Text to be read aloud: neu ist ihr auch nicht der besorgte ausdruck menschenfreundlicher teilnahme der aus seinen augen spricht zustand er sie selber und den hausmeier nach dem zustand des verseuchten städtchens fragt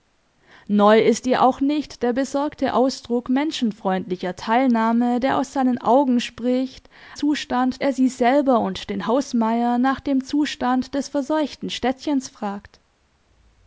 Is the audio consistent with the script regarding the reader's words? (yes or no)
yes